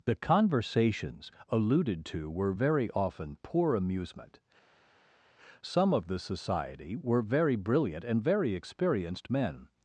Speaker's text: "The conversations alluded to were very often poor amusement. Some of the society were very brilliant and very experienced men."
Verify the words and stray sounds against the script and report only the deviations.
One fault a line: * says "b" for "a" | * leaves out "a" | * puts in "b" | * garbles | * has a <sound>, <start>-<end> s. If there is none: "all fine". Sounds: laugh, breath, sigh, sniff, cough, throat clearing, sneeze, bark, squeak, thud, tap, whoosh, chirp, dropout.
all fine